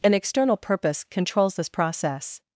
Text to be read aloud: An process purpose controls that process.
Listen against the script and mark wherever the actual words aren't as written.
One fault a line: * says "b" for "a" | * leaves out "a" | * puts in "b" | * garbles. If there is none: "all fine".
* says "external" for "process"
* says "this" for "that"